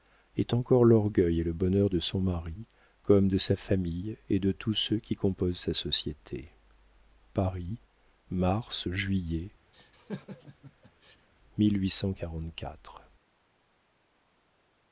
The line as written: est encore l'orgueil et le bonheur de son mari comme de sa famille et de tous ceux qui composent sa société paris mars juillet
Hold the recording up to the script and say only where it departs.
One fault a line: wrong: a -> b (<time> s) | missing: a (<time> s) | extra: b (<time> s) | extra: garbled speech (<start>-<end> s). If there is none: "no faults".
no faults